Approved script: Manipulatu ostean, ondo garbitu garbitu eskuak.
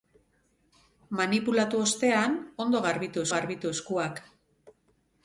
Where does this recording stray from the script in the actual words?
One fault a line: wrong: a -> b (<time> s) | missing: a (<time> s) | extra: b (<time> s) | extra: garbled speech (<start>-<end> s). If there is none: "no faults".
no faults